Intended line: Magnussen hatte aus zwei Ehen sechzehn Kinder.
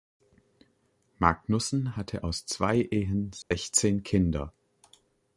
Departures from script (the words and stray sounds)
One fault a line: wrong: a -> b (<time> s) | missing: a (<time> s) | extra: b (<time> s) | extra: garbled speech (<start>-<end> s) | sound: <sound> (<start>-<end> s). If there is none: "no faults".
sound: dropout (3.4-3.5 s)